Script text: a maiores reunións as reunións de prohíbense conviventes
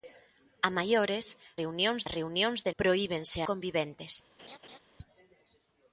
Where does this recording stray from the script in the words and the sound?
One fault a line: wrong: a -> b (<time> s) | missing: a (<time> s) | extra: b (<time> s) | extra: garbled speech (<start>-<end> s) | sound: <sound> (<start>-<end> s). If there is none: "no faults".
sound: laugh (4.4-4.8 s)